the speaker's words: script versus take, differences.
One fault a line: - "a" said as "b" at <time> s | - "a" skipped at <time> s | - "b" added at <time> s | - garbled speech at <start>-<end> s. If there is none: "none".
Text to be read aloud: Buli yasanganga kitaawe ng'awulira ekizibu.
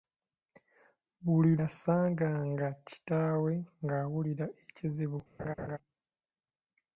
none